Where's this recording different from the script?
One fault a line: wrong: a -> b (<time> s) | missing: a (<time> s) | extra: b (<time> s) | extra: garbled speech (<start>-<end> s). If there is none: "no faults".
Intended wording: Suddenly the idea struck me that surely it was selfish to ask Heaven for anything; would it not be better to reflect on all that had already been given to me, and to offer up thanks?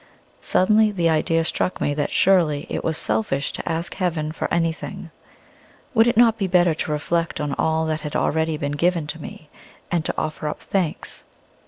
no faults